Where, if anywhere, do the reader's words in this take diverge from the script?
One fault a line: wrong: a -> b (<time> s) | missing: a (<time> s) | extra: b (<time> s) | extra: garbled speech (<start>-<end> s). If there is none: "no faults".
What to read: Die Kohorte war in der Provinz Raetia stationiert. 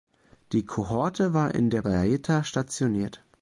missing: Provinz (1.8 s)